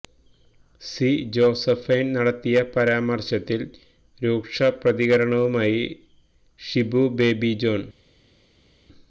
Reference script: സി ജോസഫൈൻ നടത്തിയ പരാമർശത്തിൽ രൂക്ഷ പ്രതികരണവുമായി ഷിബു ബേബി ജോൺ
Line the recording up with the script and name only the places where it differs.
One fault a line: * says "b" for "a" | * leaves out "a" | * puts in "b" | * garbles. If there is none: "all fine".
all fine